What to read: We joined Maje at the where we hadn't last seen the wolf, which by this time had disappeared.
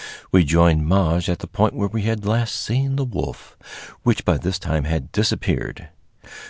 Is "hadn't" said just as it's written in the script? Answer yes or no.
no